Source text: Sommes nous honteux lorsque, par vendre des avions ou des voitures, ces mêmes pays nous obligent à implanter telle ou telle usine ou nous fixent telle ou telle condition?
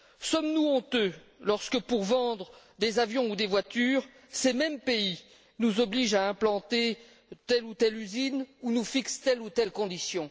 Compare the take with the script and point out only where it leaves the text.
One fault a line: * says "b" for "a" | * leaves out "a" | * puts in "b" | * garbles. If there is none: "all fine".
* says "pour" for "par"